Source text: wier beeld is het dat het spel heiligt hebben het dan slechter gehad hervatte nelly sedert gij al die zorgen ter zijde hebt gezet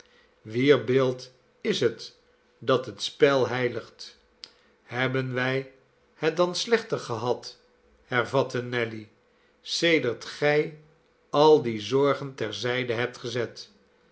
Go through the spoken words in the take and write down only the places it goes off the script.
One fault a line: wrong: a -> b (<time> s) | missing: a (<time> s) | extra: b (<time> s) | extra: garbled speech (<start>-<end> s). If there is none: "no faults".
extra: wij (5.3 s)